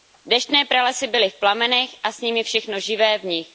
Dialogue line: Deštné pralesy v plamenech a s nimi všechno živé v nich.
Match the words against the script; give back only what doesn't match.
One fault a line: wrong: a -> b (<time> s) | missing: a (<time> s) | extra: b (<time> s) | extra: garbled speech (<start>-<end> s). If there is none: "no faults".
extra: byly (1.1 s)